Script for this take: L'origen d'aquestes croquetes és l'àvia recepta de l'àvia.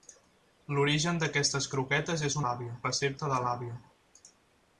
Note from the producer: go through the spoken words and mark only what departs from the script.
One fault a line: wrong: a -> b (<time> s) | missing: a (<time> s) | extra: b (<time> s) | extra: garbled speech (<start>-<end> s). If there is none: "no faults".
no faults